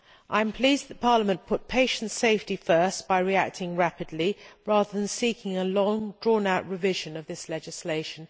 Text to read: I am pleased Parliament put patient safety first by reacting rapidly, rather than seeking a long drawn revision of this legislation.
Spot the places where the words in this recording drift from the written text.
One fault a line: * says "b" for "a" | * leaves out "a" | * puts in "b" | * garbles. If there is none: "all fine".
* puts in "that"
* puts in "out"